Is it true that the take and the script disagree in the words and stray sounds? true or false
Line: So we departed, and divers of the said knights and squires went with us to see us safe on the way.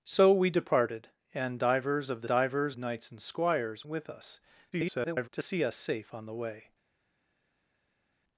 true